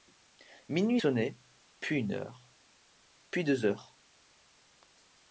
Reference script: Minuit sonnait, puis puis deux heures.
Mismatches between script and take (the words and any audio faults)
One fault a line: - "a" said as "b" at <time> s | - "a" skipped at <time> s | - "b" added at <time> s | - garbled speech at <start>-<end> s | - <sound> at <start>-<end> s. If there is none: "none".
- "une heure" added at 2.0 s